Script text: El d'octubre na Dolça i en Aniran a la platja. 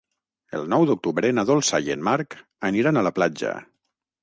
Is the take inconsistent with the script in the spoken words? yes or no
yes